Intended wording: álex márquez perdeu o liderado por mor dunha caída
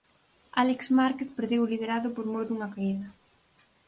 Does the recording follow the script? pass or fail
pass